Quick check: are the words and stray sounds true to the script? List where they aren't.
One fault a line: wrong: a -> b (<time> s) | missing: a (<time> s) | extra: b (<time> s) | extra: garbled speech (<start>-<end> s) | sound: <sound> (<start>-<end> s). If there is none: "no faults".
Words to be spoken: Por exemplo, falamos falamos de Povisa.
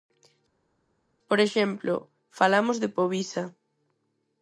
missing: falamos (2.8 s)